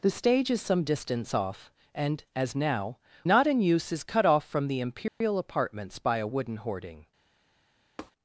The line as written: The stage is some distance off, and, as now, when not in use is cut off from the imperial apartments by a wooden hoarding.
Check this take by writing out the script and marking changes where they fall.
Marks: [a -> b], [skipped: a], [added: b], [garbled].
The stage is some distance off, and, as now, [skipped: when] not in use is cut off from the imperial apartments by a wooden hoarding.